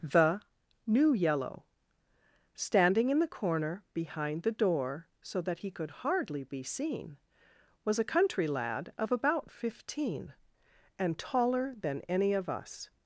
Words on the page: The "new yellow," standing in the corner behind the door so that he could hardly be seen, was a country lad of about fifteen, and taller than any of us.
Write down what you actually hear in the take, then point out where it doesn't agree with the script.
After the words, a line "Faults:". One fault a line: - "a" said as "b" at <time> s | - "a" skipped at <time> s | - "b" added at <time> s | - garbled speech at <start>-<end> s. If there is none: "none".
The "new yellow," standing in the corner behind the door so that he could hardly be seen, was a country lad of about fifteen, and taller than any of us.
Faults:
none